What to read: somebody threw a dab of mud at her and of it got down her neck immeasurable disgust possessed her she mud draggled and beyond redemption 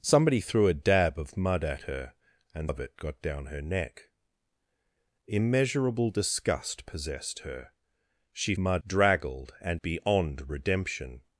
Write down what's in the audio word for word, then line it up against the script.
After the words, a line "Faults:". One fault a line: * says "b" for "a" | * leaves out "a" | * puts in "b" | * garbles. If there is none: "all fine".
somebody threw a dab of mud at her and of it got down her neck immeasurable disgust possessed her she mud draggled and beyond redemption
Faults:
all fine